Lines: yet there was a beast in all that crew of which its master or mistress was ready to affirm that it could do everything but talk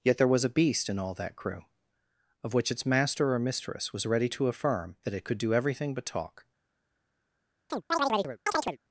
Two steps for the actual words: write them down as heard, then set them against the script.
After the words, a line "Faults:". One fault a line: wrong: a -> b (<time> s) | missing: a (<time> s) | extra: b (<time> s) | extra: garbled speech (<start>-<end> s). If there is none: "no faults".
yet there was a beast in all that crew of which its master or mistress was ready to affirm that it could do everything but talk
Faults:
no faults